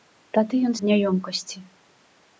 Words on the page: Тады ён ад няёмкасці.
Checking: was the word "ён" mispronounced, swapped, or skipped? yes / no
no